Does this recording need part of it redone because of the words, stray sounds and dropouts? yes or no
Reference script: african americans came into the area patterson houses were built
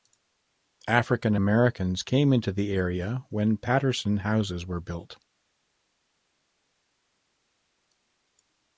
yes